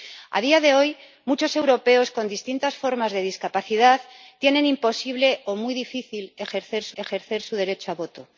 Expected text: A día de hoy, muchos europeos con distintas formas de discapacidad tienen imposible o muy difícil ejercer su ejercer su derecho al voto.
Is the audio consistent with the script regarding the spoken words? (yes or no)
yes